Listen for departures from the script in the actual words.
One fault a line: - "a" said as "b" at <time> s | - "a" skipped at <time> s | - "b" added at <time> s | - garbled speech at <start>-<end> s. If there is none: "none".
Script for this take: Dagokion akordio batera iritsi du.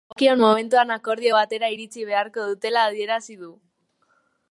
- "momentuan" added at 0.4 s
- "beharko dutela adierazi" added at 2.1 s